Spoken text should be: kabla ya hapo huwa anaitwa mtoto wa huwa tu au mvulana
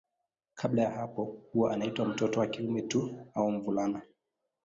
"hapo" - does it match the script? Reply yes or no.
yes